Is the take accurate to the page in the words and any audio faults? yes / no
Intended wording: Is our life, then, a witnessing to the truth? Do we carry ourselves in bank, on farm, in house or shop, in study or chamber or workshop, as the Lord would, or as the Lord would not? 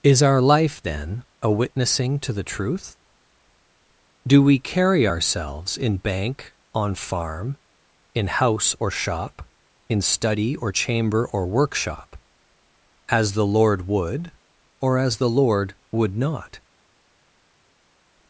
yes